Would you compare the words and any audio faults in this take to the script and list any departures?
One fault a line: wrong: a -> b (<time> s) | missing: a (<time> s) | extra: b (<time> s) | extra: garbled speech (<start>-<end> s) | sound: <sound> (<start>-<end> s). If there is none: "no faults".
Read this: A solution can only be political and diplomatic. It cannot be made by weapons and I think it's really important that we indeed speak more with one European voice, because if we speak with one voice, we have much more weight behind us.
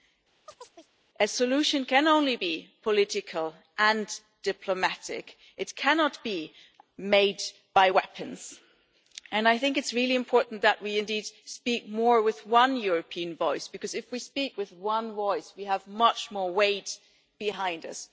sound: chirp (0.5-0.9 s)